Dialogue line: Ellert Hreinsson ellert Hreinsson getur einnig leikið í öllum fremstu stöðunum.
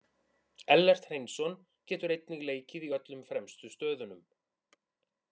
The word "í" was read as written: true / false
true